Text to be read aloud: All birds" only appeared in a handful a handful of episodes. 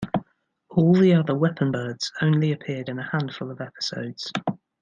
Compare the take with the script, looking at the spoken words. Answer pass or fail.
fail